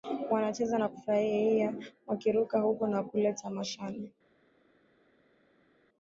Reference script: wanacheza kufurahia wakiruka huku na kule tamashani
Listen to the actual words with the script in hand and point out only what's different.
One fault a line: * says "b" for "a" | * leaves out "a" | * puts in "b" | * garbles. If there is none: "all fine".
* puts in "na"